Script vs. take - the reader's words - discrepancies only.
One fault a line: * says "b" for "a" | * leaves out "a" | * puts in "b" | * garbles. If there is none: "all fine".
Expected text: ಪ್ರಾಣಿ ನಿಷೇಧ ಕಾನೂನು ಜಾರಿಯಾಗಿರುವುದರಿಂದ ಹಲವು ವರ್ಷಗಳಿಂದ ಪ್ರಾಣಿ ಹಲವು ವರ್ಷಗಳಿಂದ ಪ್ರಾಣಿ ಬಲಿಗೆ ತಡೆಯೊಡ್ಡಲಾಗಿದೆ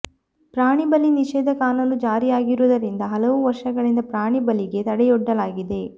* puts in "ಬಲಿ"
* leaves out "ಹಲವು ವರ್ಷಗಳಿಂದ ಪ್ರಾಣಿ"